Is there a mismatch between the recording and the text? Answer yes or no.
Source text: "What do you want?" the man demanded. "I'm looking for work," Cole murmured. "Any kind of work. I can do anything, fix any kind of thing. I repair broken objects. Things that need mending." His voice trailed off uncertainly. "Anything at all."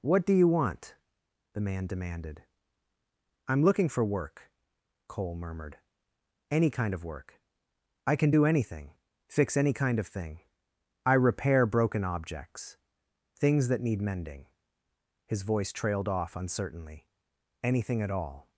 no